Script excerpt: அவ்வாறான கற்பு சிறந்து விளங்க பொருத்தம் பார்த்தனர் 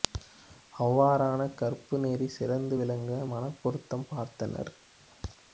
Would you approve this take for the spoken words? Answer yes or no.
no